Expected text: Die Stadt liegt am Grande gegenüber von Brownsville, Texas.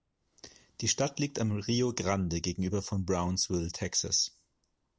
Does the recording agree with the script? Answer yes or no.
no